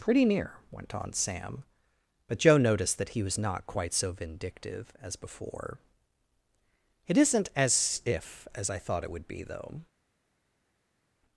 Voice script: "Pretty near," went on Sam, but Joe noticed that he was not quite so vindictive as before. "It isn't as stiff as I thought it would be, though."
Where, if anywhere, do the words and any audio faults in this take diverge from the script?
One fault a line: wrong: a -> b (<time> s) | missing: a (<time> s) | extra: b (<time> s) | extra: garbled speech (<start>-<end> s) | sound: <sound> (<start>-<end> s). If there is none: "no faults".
wrong: stiff -> if (8.0 s)